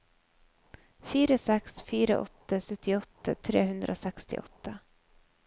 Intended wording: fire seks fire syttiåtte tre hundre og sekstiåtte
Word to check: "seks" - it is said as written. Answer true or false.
true